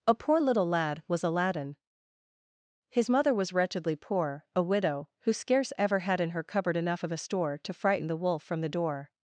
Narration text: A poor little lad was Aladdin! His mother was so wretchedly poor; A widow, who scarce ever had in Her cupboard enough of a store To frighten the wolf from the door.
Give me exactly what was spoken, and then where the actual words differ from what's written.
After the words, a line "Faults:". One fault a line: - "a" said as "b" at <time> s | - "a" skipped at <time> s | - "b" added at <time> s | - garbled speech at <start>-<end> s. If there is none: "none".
A poor little lad was Aladdin! His mother was wretchedly poor; A widow, who scarce ever had in Her cupboard enough of a store To frighten the wolf from the door.
Faults:
- "so" skipped at 3.5 s